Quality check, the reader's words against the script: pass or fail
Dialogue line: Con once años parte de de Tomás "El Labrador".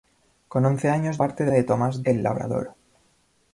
pass